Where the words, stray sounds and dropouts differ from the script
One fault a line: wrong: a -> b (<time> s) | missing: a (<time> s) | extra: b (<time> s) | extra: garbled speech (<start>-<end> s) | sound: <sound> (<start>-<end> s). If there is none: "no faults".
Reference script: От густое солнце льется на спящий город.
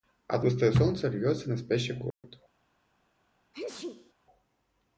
sound: dropout (2.1-2.2 s)
sound: sneeze (3.5-4.1 s)